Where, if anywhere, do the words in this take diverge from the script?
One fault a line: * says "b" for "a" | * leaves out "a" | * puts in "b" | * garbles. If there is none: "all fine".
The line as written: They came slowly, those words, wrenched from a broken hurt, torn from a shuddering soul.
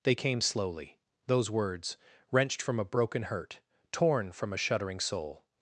all fine